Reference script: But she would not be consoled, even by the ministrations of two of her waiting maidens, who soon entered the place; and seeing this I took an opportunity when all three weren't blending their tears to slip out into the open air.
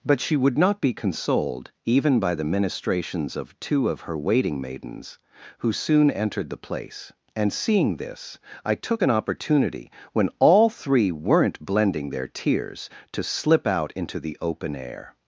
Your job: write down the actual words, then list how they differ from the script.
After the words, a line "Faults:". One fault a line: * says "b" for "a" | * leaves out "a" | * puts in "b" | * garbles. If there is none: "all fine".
But she would not be consoled, even by the ministrations of two of her waiting maidens, who soon entered the place; and seeing this I took an opportunity when all three weren't blending their tears to slip out into the open air.
Faults:
all fine